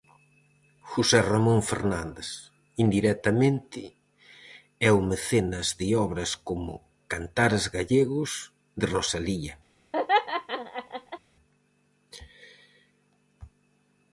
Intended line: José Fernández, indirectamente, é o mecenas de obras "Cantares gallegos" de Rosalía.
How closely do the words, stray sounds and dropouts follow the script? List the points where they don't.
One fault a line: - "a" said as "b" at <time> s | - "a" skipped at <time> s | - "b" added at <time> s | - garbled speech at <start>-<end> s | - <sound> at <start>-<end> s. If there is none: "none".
- "Ramón" added at 1.3 s
- "como" added at 6.5 s
- laugh at 9.9-11.2 s